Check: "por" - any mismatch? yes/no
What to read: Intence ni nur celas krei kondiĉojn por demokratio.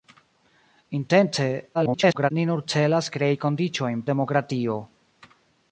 yes